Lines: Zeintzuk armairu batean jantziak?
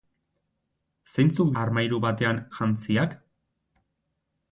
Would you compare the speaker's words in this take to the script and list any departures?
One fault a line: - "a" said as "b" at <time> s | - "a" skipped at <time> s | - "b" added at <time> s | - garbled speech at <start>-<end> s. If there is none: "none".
none